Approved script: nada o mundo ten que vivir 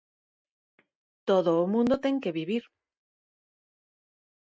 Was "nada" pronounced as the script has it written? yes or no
no